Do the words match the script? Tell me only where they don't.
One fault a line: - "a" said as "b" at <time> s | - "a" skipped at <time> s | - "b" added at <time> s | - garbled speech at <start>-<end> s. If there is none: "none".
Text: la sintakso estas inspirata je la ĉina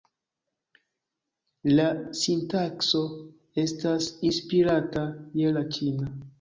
none